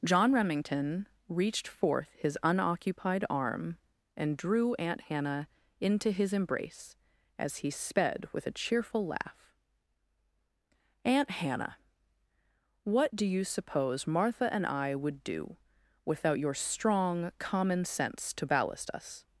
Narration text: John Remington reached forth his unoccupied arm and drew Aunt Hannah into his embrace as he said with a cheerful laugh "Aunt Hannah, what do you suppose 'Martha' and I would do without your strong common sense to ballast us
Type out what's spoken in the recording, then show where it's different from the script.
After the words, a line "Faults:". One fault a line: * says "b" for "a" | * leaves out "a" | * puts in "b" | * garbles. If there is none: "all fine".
John Remington reached forth his unoccupied arm and drew Aunt Hannah into his embrace as he sped with a cheerful laugh "Aunt Hannah, what do you suppose 'Martha' and I would do without your strong common sense to ballast us
Faults:
* says "sped" for "said"